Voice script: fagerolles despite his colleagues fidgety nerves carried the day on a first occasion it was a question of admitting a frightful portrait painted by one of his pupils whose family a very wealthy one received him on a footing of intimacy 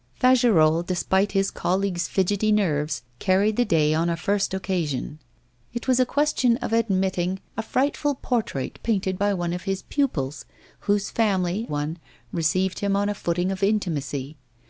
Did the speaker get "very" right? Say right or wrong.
wrong